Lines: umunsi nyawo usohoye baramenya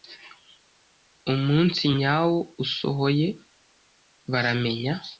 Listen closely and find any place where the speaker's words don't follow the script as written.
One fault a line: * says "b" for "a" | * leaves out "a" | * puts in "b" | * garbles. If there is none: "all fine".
all fine